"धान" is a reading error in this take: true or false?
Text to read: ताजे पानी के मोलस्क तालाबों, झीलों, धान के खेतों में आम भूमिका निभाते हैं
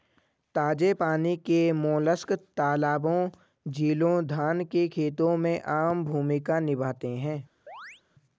false